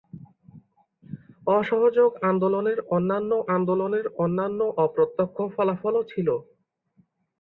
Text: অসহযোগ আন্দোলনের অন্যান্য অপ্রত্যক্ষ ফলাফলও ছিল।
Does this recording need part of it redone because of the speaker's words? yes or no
yes